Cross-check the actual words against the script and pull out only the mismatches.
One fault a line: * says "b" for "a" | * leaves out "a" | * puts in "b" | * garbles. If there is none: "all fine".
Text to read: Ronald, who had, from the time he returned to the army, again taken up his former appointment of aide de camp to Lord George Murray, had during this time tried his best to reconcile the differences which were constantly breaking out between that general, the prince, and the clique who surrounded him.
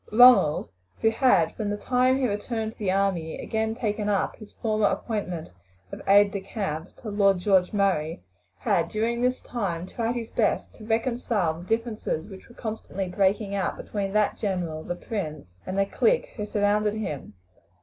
all fine